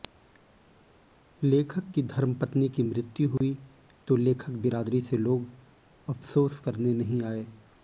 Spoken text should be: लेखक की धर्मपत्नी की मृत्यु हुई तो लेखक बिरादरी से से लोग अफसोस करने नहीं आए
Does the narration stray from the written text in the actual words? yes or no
yes